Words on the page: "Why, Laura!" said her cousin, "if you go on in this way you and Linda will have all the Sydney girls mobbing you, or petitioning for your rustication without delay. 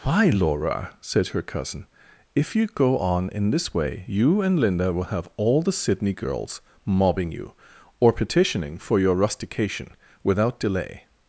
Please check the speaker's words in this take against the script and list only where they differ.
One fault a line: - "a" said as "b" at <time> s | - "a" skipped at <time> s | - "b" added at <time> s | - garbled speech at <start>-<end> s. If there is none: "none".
none